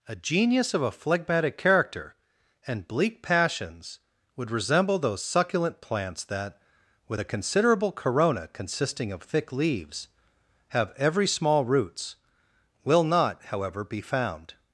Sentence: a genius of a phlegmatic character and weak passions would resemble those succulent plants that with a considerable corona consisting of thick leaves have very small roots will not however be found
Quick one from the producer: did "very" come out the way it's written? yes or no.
no